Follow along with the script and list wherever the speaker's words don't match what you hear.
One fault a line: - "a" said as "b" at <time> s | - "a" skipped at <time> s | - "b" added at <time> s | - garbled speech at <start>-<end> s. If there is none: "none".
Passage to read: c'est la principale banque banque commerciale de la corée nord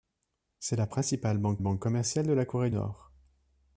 none